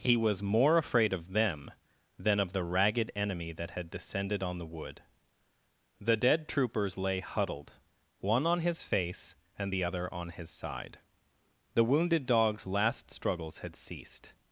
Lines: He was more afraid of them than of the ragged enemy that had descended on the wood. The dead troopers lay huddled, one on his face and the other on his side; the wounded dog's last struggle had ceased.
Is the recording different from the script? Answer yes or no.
yes